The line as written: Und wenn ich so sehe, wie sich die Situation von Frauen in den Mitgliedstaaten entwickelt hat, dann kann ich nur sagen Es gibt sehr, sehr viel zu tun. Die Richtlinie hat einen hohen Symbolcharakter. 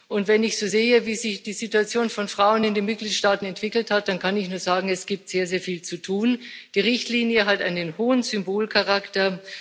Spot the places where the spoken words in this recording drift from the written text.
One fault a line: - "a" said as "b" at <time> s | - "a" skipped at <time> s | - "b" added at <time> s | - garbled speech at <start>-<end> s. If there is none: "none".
none